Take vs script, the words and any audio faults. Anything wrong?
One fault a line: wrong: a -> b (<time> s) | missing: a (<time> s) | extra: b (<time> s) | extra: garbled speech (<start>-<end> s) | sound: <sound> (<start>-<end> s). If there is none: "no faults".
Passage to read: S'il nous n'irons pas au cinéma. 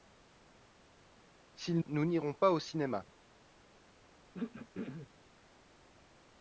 sound: throat clearing (4.3-5.1 s)